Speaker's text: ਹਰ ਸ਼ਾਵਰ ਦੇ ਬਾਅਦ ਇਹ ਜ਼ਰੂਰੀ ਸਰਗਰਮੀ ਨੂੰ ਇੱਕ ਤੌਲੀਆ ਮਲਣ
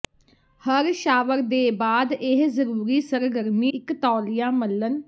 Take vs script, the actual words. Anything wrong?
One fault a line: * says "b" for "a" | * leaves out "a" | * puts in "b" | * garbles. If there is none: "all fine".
* leaves out "ਨੂੰ"